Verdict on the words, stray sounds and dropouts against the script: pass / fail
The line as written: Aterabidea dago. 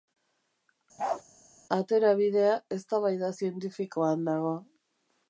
fail